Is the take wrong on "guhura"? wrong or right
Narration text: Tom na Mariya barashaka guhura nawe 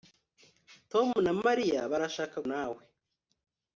wrong